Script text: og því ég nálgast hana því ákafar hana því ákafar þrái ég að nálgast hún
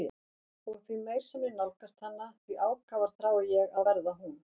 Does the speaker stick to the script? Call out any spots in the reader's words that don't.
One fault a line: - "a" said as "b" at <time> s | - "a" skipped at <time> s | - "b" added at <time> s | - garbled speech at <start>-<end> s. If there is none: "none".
- "meir sem" added at 1.0 s
- "hana því ákafar" skipped at 3.1 s
- "nálgast" said as "verða" at 3.9 s